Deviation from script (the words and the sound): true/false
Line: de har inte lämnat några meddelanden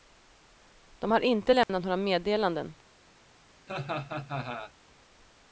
true